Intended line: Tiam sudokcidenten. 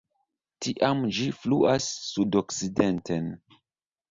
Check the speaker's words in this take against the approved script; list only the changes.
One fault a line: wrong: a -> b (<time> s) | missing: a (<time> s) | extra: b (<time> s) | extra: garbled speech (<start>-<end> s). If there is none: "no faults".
extra: ĝi fluas (1.2 s)